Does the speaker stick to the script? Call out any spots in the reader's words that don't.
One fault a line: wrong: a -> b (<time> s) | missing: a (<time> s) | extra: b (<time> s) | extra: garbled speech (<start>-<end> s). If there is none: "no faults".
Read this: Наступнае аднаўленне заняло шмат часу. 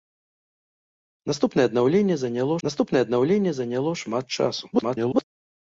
extra: наступнае аднаўленне заняло (2.7 s)
extra: garbled speech (4.7-5.2 s)